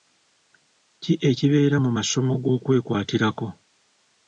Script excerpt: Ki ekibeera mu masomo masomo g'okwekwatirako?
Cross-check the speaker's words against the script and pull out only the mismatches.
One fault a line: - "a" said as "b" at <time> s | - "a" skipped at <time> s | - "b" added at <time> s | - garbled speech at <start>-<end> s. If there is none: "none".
- "masomo" skipped at 2.3 s